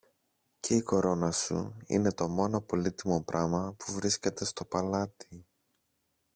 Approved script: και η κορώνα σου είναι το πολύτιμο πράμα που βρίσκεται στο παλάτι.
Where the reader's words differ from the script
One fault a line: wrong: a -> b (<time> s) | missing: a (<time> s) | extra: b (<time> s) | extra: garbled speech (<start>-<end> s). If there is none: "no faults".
extra: μόνο (2.3 s)